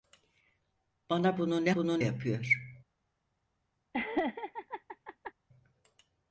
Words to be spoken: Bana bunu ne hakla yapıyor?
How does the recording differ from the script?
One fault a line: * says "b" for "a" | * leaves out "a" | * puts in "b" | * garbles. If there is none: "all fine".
* says "bunu" for "hakla"